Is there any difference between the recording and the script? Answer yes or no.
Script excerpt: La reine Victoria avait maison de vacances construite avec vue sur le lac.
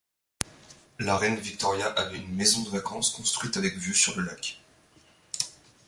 yes